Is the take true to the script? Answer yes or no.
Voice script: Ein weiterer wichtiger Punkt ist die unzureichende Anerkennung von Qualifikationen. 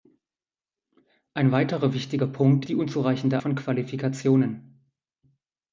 no